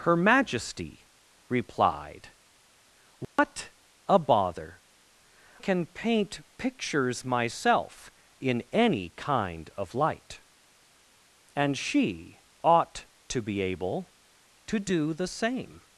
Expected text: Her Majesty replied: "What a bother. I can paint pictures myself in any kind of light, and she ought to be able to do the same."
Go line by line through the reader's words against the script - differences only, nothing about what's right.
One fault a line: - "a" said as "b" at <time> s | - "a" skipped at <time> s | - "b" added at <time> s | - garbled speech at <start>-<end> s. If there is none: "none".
- "I" skipped at 4.8 s